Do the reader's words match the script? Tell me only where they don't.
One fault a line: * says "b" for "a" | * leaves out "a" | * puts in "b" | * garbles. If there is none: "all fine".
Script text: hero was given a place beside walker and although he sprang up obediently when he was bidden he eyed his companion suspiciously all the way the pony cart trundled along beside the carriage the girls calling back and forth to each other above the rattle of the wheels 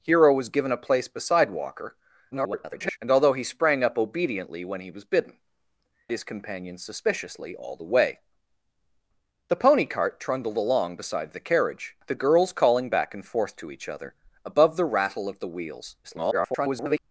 * garbles
* leaves out "he eyed"
* garbles